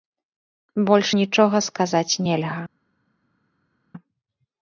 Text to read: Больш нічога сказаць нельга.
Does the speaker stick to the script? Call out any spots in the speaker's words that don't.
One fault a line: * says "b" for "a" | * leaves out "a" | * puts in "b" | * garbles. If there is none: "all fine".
all fine